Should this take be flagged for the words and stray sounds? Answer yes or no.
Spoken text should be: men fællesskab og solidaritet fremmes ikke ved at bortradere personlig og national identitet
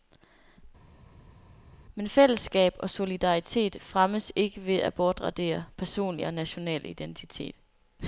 no